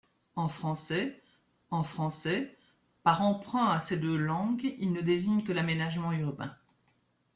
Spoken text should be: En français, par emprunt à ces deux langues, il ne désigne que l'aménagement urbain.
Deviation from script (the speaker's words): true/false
true